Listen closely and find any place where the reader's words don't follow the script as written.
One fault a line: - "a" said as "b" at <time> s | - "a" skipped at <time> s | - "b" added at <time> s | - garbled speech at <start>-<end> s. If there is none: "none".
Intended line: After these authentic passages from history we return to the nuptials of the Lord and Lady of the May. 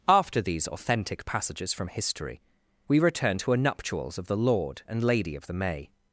- "the" said as "a" at 3.5 s